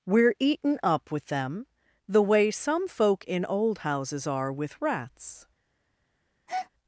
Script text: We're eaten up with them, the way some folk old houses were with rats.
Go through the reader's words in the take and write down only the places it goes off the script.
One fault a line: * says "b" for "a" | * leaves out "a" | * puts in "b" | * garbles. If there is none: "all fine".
* puts in "in"
* says "are" for "were"